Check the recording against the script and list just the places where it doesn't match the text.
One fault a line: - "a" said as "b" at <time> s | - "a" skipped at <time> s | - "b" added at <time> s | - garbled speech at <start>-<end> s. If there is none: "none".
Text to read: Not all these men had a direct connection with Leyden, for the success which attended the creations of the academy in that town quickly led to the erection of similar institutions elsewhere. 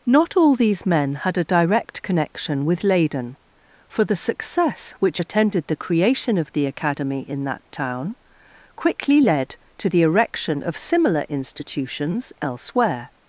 - "creations" said as "creation" at 5.7 s